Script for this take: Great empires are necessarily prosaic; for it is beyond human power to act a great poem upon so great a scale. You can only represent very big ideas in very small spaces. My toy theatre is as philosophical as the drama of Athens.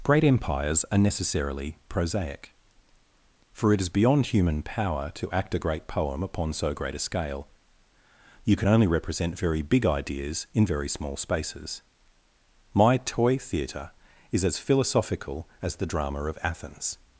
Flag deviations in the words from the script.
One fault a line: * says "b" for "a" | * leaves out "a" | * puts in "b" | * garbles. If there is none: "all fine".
all fine